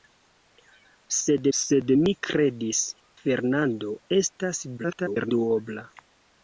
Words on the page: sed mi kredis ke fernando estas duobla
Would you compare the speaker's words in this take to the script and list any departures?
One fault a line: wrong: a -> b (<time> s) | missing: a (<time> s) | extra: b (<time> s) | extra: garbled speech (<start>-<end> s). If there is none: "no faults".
extra: sed (1.6 s)
missing: ke (2.8 s)
extra: garbled speech (4.8-5.3 s)